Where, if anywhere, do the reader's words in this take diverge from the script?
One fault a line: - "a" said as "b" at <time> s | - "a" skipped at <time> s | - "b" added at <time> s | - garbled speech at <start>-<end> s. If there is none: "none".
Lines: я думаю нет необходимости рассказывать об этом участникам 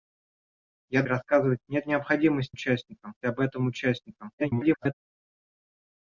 - "думаю" said as "рассказывать" at 1.1 s
- "рассказывать" said as "участникам" at 2.5 s
- garbled speech at 4.4-4.9 s